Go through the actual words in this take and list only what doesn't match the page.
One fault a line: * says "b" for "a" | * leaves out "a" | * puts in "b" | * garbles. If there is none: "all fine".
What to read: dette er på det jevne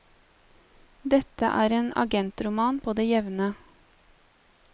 * puts in "en agentroman"